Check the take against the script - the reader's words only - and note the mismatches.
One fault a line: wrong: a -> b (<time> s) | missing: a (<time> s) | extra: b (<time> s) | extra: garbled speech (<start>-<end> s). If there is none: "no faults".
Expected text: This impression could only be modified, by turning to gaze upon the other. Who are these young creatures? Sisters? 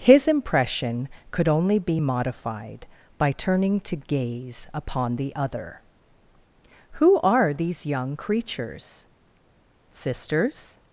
wrong: This -> His (0.0 s)